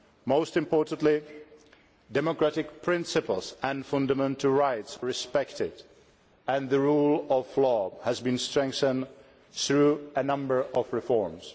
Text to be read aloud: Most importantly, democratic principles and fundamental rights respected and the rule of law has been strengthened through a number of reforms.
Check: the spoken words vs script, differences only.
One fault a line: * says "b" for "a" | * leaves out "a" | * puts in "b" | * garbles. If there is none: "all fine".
all fine